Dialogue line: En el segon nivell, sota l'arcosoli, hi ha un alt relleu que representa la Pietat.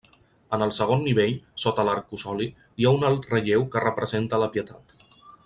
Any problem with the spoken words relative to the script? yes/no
no